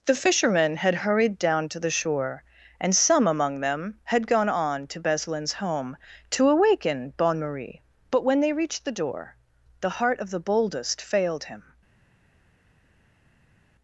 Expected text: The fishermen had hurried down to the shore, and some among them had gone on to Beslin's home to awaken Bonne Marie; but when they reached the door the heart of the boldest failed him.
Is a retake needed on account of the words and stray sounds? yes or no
no